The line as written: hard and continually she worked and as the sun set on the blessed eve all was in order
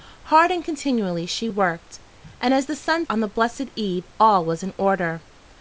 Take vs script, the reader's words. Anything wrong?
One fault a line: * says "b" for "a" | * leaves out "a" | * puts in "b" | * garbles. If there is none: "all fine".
* leaves out "set"